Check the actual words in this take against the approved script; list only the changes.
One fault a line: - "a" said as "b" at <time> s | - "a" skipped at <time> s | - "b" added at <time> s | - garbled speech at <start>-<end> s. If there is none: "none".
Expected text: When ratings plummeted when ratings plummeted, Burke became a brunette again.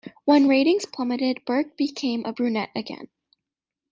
- "when ratings plummeted" skipped at 1.4 s